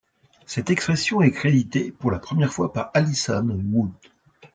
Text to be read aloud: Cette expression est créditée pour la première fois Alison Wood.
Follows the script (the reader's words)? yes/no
no